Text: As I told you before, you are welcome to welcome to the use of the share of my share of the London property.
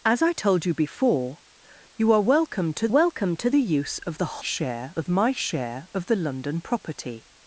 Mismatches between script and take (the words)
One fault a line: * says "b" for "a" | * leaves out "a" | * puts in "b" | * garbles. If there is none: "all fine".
all fine